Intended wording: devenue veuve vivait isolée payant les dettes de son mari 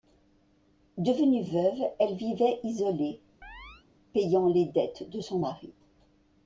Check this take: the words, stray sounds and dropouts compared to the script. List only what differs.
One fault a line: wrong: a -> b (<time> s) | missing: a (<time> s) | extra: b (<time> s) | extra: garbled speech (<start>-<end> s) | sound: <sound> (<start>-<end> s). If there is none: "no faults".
extra: elle (2.0 s)
sound: chirp (3.4-3.9 s)